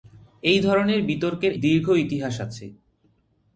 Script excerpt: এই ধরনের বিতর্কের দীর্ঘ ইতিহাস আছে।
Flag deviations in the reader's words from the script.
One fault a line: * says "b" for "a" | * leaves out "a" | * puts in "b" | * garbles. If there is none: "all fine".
all fine